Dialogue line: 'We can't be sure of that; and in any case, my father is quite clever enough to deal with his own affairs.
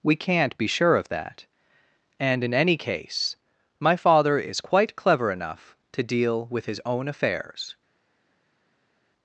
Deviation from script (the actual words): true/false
false